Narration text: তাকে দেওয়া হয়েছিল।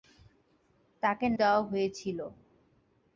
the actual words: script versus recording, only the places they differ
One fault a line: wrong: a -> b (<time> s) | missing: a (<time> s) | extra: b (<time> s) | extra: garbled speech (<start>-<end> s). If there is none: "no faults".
no faults